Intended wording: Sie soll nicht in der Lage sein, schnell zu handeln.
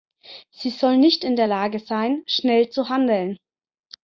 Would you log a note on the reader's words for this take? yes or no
no